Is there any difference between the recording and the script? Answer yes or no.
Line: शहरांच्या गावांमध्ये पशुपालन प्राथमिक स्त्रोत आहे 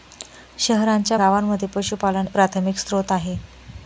no